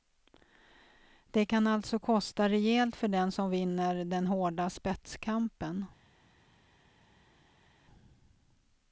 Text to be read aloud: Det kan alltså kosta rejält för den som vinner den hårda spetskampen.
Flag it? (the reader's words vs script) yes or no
no